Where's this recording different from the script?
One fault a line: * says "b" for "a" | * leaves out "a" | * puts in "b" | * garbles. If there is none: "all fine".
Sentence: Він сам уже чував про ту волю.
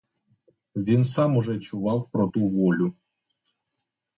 all fine